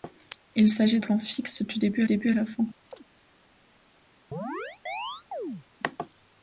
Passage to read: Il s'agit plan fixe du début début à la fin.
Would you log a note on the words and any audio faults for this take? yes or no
yes